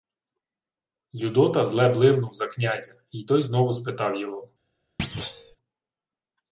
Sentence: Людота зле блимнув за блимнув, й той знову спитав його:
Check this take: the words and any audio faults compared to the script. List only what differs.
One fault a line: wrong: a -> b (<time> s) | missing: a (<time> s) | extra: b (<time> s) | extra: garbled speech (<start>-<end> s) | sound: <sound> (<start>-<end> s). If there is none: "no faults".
wrong: блимнув -> князя (2.5 s)
sound: thud (5.0-5.6 s)